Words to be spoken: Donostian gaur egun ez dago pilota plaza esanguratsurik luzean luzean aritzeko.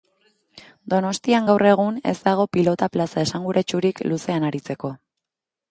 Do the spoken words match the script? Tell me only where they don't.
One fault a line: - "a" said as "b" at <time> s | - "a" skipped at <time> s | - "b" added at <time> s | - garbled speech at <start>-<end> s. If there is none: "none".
- "luzean" skipped at 4.5 s